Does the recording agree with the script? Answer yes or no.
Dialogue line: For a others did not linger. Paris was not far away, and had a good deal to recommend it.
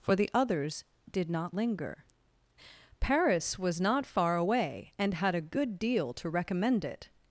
no